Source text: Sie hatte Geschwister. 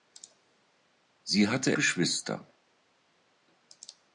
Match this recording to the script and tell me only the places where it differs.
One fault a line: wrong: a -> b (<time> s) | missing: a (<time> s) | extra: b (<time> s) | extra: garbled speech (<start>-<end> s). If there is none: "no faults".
no faults